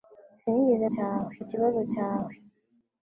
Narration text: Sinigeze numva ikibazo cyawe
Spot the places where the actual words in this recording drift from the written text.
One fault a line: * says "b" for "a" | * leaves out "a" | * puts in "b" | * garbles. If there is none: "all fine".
* says "cyawe" for "numva"